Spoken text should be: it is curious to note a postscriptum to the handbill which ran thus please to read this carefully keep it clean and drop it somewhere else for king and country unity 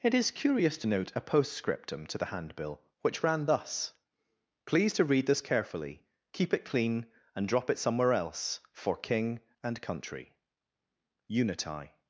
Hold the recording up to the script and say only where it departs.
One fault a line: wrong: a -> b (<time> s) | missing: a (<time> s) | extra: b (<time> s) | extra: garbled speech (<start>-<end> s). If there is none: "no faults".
no faults